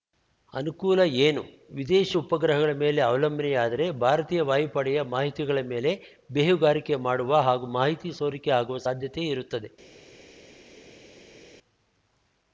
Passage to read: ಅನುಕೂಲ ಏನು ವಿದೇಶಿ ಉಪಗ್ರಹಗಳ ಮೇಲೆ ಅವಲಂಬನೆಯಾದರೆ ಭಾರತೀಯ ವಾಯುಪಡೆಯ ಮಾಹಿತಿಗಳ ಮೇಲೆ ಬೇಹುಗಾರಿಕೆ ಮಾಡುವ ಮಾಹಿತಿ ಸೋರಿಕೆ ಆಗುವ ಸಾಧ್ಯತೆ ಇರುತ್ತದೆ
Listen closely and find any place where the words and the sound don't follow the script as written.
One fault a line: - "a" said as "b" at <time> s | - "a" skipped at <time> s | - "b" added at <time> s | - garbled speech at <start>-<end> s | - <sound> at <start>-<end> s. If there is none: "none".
- "ಹಾಗೂ" added at 7.4 s